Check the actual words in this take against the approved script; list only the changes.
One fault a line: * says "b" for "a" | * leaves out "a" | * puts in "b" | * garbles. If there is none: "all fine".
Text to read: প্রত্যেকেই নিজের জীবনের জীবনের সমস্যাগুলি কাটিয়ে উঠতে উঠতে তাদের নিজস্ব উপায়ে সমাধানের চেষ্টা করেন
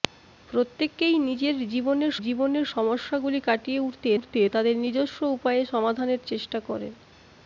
all fine